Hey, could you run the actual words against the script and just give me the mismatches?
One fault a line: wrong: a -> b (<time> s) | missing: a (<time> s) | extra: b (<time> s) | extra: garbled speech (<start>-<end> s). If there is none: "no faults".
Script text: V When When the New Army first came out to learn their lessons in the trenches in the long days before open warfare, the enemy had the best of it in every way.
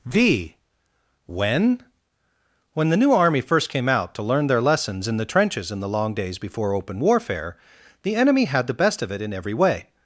no faults